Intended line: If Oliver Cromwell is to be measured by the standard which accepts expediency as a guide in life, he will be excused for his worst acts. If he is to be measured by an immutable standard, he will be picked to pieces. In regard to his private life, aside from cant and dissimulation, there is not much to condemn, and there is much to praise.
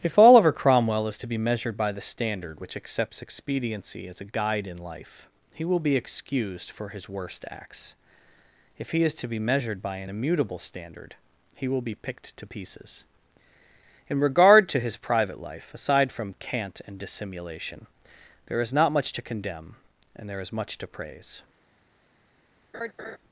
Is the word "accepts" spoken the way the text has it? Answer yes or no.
yes